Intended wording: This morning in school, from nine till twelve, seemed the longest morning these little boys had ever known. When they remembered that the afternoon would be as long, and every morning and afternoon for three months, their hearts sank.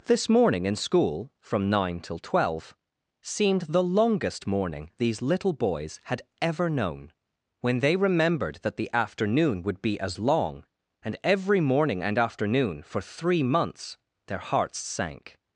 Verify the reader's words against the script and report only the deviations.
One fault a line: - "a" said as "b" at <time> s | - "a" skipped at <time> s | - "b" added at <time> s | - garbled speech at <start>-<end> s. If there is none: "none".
none